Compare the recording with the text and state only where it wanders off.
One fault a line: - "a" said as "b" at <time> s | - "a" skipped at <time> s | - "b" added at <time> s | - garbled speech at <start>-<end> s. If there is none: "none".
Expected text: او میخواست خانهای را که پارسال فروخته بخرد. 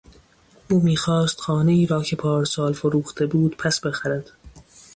- "بود پس" added at 3.2 s